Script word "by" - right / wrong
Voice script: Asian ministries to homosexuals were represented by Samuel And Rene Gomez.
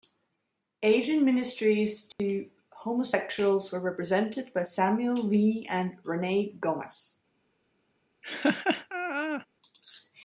right